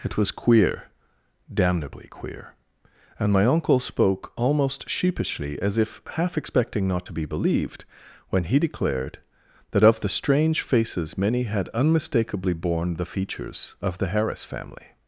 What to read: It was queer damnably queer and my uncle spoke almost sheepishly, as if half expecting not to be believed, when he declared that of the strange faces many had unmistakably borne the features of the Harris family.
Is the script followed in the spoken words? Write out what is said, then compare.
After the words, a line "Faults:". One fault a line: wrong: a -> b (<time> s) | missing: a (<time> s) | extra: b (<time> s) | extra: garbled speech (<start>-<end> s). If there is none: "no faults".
It was queer damnably queer and my uncle spoke almost sheepishly, as if half expecting not to be believed, when he declared that of the strange faces many had unmistakably borne the features of the Harris family.
Faults:
no faults